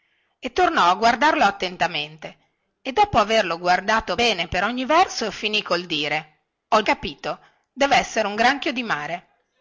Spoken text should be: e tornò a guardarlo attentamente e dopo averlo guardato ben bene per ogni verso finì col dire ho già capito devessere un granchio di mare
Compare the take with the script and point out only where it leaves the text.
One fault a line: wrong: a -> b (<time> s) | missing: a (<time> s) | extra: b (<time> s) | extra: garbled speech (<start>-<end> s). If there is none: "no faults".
missing: ben (4.2 s)
missing: già (6.8 s)